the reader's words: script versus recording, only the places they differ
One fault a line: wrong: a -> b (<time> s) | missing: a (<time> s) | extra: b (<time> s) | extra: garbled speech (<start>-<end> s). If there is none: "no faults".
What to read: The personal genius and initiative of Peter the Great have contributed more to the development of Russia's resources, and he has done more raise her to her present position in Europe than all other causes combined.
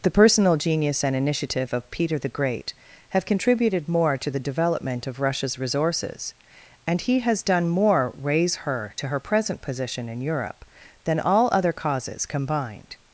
no faults